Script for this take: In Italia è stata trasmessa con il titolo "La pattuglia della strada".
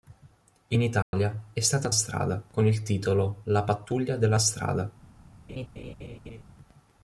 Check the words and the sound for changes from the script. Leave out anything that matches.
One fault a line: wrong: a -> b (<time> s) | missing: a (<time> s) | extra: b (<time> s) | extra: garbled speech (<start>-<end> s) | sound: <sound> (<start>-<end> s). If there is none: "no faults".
sound: dropout (1.0-1.1 s)
wrong: trasmessa -> strada (1.9 s)
sound: laugh (5.5-6.4 s)